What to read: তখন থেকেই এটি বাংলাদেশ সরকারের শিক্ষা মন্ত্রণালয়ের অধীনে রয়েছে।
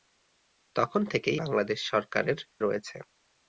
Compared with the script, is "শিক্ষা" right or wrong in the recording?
wrong